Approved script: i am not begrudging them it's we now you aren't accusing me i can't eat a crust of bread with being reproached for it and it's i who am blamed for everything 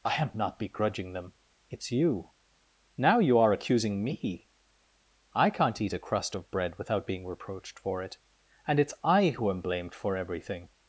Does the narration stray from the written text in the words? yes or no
yes